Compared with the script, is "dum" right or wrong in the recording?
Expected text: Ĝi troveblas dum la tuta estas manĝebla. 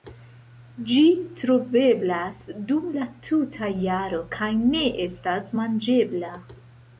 right